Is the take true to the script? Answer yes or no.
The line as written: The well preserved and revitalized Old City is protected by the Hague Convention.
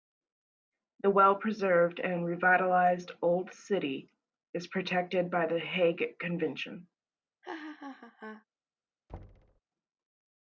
yes